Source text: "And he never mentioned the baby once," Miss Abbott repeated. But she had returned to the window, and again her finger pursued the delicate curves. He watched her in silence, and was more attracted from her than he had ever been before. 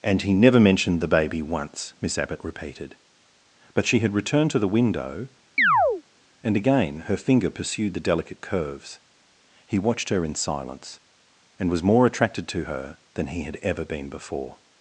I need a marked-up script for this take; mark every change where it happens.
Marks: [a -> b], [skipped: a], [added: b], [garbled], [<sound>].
"And he never mentioned the baby once," Miss Abbott repeated. But she had returned to the window, [chirp] and again her finger pursued the delicate curves. He watched her in silence, and was more attracted [from -> to] her than he had ever been before.